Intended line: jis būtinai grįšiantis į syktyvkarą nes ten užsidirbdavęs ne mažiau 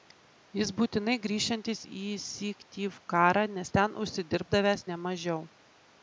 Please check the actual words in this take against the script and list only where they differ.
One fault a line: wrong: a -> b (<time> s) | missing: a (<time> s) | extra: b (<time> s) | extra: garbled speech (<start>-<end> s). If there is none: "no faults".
no faults